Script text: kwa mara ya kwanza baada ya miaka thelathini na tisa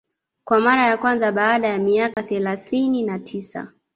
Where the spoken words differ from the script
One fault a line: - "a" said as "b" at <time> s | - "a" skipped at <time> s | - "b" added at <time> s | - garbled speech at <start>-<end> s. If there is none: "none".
none